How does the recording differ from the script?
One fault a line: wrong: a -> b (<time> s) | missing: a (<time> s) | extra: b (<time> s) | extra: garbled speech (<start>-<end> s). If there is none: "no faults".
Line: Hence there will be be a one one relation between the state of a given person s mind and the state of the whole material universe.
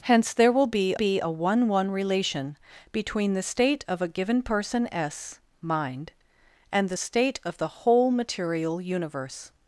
no faults